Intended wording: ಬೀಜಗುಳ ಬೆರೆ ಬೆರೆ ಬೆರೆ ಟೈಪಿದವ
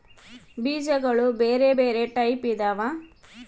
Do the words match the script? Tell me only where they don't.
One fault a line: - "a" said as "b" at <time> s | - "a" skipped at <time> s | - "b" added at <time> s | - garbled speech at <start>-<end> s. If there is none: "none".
- "ಬೆರೆ" skipped at 2.1 s